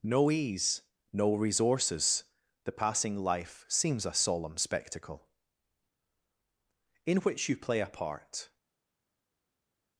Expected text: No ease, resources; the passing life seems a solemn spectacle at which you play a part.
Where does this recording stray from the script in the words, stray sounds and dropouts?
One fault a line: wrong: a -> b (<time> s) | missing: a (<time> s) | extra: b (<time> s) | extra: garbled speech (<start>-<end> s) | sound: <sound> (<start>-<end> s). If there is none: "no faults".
extra: no (1.1 s)
wrong: at -> in (7.0 s)